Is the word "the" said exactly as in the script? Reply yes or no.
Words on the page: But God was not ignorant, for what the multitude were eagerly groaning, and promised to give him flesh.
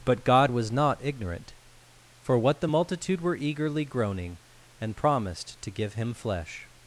yes